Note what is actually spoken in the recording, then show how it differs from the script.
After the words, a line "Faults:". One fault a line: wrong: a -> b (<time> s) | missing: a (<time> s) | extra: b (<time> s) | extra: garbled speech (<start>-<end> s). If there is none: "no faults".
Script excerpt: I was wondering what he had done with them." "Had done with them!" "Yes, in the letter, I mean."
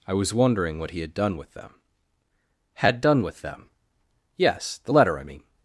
I was wondering what he had done with them." "Had done with them!" "Yes, the letter, I mean."
Faults:
missing: in (4.8 s)